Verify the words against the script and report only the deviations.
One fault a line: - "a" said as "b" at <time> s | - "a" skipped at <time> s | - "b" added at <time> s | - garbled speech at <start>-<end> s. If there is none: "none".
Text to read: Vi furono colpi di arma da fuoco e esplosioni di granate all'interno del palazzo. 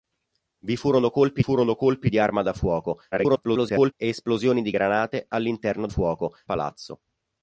- "furono colpi" added at 1.4 s
- garbled speech at 3.1-3.9 s
- "del" said as "fuoco" at 5.9 s